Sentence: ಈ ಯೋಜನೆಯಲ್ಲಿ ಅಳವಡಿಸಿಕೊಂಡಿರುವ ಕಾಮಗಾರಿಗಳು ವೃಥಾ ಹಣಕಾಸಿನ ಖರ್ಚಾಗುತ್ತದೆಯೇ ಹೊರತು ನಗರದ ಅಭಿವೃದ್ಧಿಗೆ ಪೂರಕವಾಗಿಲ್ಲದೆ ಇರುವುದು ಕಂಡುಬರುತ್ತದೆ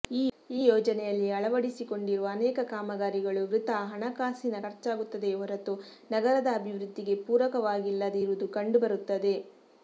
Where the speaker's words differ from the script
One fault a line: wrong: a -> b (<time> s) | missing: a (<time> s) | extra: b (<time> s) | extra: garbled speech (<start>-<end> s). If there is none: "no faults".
extra: ಅನೇಕ (2.3 s)